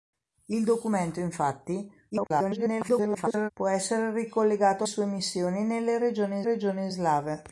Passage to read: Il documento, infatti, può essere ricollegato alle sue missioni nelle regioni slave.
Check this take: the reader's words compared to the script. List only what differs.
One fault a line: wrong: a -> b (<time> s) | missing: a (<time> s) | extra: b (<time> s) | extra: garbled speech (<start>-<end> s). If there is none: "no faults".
extra: garbled speech (2.1-3.5 s)
missing: alle (4.8 s)
extra: regioni (6.4 s)